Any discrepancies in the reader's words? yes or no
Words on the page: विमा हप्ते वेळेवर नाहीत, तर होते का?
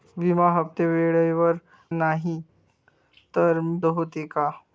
no